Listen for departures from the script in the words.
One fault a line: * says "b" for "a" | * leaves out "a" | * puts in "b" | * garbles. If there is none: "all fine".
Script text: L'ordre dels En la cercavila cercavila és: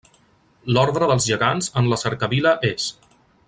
* puts in "Gegants"
* leaves out "cercavila"